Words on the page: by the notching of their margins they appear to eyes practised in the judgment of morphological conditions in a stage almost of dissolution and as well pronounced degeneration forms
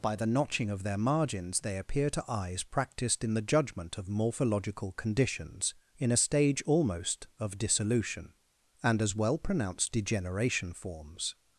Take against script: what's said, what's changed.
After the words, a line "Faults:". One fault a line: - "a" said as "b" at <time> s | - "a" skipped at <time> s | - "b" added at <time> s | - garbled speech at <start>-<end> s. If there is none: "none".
by the notching of their margins they appear to eyes practised in the judgment of morphological conditions in a stage almost of dissolution and as well pronounced degeneration forms
Faults:
none